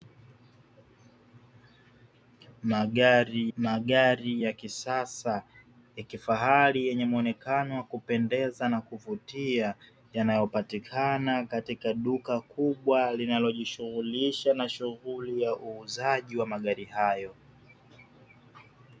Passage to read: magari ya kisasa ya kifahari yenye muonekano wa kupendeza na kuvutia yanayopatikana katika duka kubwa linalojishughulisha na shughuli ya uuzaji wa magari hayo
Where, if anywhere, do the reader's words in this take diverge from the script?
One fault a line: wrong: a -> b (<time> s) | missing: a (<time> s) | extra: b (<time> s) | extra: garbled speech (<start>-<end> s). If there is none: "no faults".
extra: magari (3.6 s)